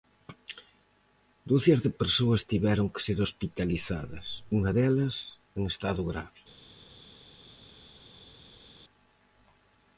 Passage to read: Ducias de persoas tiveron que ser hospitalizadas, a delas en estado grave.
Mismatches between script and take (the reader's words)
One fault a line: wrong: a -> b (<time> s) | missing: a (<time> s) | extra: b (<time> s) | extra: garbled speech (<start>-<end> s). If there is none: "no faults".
wrong: a -> unha (4.6 s)